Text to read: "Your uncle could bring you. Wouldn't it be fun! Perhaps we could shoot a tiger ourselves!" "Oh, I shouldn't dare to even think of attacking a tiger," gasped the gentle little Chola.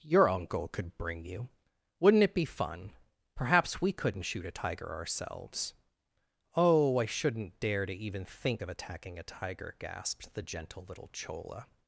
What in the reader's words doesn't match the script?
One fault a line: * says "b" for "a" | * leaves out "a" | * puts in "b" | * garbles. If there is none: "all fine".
* says "couldn't" for "could"